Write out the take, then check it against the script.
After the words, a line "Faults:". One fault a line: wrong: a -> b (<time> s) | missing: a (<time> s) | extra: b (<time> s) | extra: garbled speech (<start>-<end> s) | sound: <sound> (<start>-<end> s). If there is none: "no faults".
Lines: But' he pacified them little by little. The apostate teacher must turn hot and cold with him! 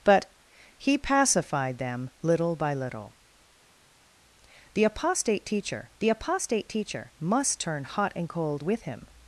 But' he pacified them little by little. The apostate teacher the apostate teacher must turn hot and cold with him!
Faults:
extra: the apostate teacher (6.0 s)